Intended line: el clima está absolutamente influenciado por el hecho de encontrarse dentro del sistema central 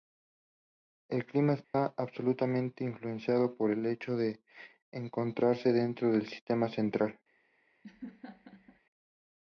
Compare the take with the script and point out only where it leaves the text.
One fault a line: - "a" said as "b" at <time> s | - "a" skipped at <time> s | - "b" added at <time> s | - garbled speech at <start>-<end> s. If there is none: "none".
none